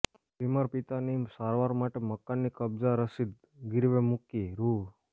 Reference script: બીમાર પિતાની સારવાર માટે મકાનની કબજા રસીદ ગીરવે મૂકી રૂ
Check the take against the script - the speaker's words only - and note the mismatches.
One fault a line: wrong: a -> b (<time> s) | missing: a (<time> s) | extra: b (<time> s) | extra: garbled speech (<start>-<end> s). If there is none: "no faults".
no faults